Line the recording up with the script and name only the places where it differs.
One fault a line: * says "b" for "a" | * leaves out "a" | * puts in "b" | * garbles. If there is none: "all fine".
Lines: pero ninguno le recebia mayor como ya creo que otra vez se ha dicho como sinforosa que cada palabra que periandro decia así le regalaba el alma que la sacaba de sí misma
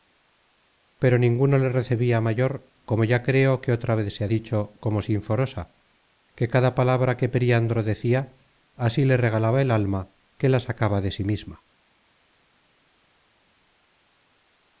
all fine